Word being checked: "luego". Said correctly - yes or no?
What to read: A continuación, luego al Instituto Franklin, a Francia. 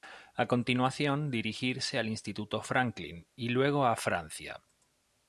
no